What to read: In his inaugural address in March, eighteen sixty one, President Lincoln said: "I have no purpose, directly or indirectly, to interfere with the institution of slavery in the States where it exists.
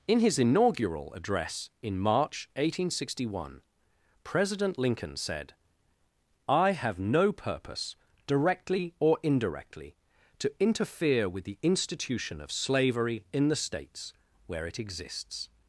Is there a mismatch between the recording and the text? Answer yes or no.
no